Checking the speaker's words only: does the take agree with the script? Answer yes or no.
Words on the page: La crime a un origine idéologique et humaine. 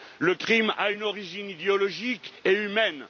no